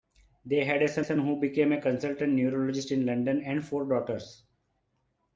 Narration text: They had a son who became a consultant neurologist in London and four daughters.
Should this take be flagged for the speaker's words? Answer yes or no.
yes